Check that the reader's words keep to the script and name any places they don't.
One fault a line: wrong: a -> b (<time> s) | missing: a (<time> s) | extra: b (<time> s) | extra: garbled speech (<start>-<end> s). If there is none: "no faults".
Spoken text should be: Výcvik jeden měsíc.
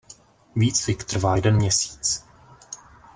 extra: trvá (1.0 s)